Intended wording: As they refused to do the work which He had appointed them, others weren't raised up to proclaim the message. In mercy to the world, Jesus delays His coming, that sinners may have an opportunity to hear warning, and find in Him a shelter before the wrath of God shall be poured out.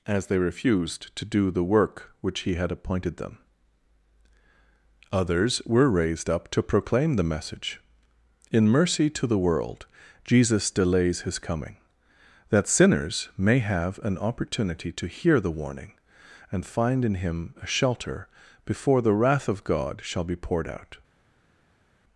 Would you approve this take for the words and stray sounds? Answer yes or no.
no